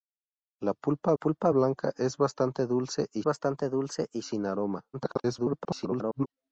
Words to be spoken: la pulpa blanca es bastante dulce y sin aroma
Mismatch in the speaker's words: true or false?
true